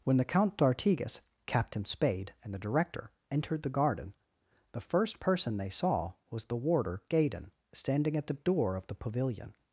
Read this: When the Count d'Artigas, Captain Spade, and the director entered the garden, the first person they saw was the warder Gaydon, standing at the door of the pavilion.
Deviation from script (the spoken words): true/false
false